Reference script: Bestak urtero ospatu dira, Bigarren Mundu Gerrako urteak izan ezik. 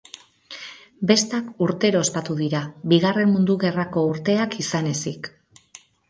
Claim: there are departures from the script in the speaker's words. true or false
false